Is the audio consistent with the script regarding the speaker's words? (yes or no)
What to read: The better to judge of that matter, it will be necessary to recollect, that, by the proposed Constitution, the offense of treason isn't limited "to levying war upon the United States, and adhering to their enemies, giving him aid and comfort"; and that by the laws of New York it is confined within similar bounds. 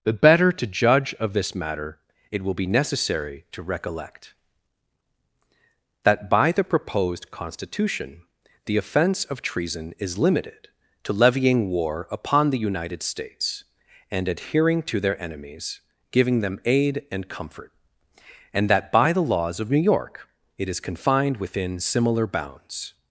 no